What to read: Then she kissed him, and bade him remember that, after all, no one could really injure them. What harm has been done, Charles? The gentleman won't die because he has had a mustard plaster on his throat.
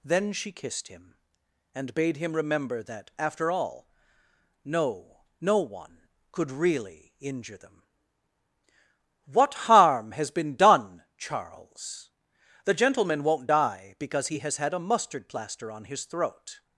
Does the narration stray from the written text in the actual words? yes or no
yes